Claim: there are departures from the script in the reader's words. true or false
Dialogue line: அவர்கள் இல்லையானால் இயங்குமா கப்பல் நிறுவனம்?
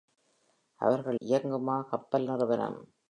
true